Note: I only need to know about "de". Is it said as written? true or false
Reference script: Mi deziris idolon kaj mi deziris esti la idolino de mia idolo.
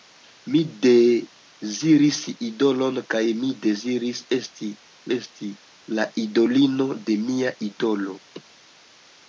true